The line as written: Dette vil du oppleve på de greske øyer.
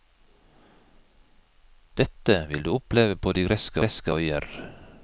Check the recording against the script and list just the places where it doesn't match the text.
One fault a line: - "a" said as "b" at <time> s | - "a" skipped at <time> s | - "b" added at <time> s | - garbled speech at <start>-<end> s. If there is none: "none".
- "greske" added at 3.8 s